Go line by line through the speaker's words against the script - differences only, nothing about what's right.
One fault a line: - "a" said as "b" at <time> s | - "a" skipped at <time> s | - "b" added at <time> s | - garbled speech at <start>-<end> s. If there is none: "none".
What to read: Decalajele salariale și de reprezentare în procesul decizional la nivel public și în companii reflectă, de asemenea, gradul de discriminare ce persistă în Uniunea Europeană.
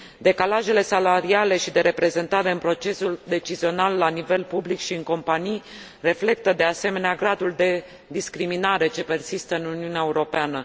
none